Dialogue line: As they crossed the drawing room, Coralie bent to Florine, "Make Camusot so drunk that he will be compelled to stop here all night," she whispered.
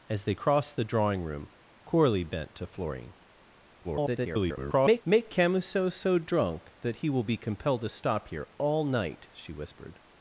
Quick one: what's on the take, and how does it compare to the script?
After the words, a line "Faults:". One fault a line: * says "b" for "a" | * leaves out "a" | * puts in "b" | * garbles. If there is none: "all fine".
As they crossed the drawing room, Coralie bent to Florine, [garbled] "Make Camusot so drunk that he will be compelled to stop here all night," she whispered.
Faults:
* garbles